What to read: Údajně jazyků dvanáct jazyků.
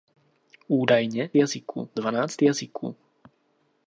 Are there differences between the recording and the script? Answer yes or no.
no